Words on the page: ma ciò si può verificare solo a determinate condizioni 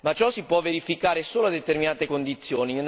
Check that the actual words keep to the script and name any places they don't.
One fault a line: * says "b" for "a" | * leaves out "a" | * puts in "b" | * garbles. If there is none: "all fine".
all fine